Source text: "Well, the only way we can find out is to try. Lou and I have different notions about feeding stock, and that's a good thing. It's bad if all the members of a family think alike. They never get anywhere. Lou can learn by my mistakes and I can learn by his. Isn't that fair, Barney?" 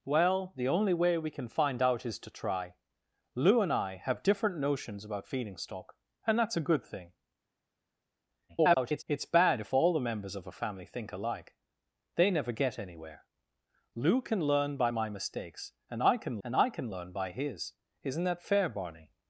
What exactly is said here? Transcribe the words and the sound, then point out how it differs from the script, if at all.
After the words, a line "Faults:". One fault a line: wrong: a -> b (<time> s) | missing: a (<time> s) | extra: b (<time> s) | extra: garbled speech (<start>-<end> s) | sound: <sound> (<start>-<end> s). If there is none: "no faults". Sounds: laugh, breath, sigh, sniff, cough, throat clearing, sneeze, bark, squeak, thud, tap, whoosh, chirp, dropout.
"Well, the only way we can find out is to try. Lou and I have different notions about feeding stock, and that's a good thing. [garbled] It's bad if all the members of a family think alike. They never get anywhere. Lou can learn by my mistakes and I can and I can learn by his. Isn't that fair, Barney?"
Faults:
extra: garbled speech (8.5-9.0 s)
extra: and I can (16.4 s)